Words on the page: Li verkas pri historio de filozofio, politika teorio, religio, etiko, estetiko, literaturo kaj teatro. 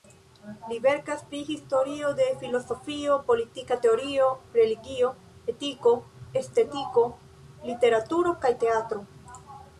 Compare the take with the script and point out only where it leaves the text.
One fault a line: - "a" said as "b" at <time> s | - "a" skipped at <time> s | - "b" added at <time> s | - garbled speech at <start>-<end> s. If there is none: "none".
none